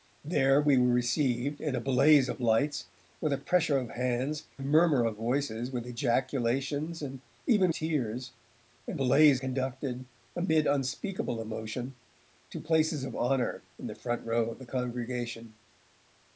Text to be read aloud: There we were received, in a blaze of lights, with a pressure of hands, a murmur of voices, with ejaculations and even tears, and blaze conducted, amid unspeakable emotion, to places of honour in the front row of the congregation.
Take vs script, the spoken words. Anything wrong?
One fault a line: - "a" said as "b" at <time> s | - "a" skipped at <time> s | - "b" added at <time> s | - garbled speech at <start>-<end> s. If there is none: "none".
none